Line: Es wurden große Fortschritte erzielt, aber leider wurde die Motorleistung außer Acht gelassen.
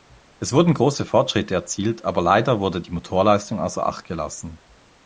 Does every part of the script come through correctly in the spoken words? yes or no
yes